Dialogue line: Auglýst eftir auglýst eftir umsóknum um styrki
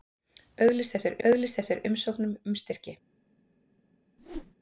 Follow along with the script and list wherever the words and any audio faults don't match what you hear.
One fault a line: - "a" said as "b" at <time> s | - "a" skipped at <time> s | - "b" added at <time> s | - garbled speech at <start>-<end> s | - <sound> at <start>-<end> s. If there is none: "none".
- whoosh at 4.2-4.5 s